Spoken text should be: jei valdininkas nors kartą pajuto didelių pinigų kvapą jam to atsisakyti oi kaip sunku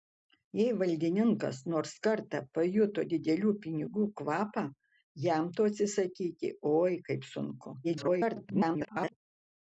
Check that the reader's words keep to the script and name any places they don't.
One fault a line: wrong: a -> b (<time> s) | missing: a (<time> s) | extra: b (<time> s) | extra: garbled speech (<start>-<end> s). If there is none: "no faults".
extra: garbled speech (7.8-9.2 s)